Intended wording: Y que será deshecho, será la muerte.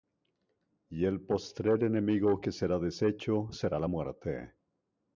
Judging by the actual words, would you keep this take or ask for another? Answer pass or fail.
fail